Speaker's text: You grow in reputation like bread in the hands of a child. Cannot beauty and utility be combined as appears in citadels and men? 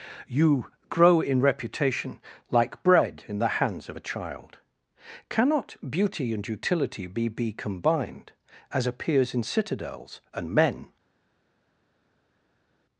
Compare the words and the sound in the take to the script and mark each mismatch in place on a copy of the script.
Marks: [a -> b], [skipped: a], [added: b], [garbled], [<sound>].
You grow in reputation like bread in the hands of a child. Cannot beauty and utility be [added: be] combined as appears in citadels and men?